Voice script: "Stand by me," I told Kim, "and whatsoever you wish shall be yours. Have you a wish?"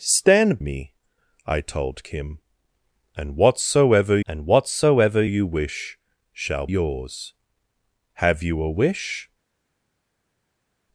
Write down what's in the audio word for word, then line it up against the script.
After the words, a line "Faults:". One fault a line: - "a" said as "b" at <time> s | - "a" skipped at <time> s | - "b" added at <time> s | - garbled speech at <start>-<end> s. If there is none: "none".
"Stand me," I told Kim, "and whatsoever and whatsoever you wish shall yours. Have you a wish?"
Faults:
- "by" skipped at 0.6 s
- "and whatsoever" added at 4.3 s
- "be" skipped at 6.7 s